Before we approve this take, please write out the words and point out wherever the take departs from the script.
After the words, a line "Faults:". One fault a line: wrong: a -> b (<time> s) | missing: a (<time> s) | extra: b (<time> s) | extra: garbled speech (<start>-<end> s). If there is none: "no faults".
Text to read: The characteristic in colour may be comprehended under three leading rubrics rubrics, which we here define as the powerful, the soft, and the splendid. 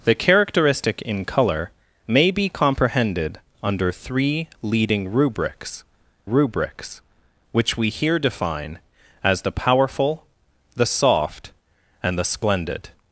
The characteristic in colour may be comprehended under three leading rubrics rubrics, which we here define as the powerful, the soft, and the splendid.
Faults:
no faults